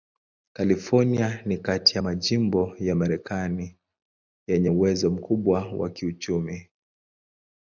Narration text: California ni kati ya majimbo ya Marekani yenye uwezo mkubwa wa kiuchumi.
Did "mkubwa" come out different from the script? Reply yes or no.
no